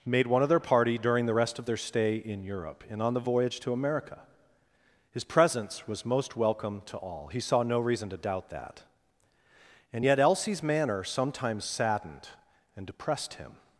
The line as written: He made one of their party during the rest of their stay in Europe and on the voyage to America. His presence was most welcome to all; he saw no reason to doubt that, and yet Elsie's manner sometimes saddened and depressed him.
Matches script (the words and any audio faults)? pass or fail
fail